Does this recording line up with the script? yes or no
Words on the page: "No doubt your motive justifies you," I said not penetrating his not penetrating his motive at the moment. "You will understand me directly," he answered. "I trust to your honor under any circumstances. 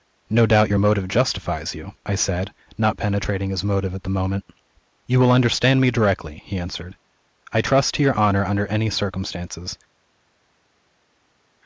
no